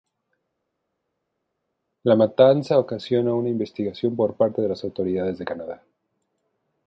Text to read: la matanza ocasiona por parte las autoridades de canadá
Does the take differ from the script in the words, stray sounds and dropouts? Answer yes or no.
yes